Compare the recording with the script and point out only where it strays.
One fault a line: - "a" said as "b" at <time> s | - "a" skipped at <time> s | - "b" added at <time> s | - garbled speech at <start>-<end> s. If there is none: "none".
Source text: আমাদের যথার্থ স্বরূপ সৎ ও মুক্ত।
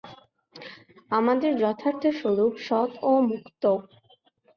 none